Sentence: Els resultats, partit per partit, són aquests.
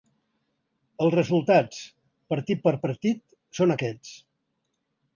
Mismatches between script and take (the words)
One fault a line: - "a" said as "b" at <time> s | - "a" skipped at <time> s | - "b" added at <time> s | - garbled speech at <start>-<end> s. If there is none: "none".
none